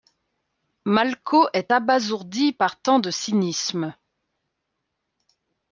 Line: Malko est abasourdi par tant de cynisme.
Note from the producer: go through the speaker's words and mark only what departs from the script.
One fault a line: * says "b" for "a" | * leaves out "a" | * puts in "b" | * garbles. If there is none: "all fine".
all fine